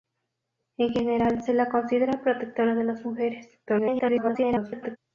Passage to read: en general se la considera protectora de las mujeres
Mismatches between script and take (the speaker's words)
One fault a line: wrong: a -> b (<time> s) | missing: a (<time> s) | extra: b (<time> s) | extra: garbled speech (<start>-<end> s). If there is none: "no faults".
extra: garbled speech (3.7-5.0 s)